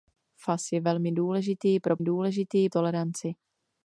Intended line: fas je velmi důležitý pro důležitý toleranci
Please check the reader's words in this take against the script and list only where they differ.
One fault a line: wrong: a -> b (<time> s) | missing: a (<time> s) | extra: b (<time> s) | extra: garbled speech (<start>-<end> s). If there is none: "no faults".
no faults